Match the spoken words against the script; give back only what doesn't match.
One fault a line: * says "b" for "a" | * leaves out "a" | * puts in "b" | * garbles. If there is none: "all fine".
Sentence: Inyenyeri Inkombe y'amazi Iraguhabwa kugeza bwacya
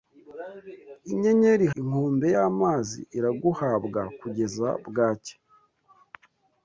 all fine